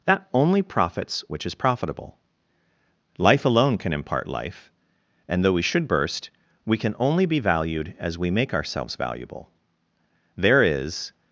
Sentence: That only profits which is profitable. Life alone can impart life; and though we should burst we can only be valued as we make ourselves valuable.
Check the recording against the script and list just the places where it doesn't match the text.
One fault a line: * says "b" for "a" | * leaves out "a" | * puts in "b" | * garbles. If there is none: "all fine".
* puts in "There is"